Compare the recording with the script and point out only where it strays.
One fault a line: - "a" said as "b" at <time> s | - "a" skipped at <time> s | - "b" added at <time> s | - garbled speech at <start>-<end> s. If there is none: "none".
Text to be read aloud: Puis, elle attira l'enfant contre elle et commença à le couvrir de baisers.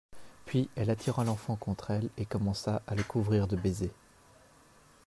none